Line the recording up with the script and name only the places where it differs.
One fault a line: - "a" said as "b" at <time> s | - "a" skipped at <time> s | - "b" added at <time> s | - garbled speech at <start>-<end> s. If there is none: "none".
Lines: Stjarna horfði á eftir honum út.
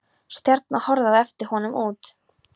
none